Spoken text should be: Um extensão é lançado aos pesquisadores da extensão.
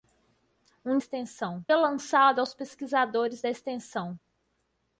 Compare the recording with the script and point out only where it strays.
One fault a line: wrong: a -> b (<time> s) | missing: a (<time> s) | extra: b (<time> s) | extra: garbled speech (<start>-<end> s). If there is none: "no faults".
no faults